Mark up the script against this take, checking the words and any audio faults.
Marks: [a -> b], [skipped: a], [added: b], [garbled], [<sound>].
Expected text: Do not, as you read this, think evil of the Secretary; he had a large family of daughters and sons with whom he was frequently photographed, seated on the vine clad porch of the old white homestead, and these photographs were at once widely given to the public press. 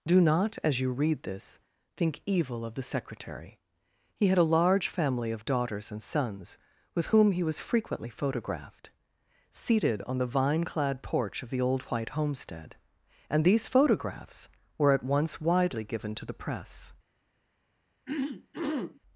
Do not, as you read this, think evil of the Secretary; he had a large family of daughters and sons with whom he was frequently photographed, seated on the vine clad porch of the old white homestead, and these photographs were at once widely given to the [skipped: public] press. [throat clearing]